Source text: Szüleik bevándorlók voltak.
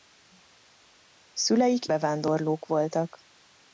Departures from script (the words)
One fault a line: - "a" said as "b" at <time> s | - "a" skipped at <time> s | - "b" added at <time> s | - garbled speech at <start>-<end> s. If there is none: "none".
none